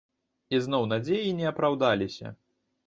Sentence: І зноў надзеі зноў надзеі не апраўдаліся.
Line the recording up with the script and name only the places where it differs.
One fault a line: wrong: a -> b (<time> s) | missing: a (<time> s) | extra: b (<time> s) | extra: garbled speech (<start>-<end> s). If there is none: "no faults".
missing: зноў надзеі (1.4 s)